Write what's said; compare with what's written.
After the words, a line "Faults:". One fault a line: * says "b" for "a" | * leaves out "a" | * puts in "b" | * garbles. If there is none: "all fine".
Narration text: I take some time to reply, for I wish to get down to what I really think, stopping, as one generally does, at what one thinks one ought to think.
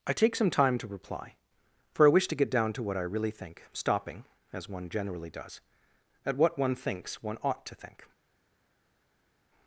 I take some time to reply, for I wish to get down to what I really think, stopping, as one generally does, at what one thinks one ought to think.
Faults:
all fine